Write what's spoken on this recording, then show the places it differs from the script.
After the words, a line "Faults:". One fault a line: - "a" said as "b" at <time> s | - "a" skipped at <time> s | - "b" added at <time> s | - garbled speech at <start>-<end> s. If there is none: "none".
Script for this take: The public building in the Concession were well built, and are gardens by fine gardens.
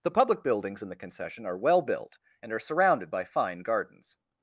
The public buildings in the Concession are well built, and are surrounded by fine gardens.
Faults:
- "building" said as "buildings" at 0.4 s
- "were" said as "are" at 1.4 s
- "gardens" said as "surrounded" at 2.6 s